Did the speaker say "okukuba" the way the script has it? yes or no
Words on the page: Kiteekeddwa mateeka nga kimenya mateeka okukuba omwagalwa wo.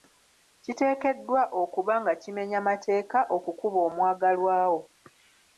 yes